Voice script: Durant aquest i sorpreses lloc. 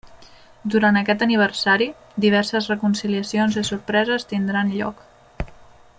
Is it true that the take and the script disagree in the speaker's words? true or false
true